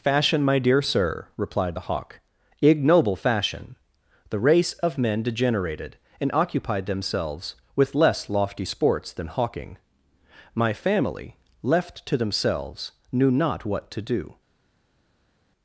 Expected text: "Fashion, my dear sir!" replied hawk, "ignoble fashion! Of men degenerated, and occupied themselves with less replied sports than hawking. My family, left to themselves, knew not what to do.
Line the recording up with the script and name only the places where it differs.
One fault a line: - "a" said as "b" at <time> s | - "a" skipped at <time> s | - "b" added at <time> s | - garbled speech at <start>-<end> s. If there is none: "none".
- "the" added at 1.7 s
- "The race" added at 4.3 s
- "replied" said as "lofty" at 8.3 s